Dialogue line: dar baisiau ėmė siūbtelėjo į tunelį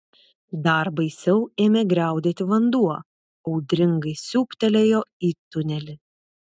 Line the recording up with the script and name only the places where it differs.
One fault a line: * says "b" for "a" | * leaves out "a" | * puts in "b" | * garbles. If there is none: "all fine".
* puts in "griaudėti vanduo audringai"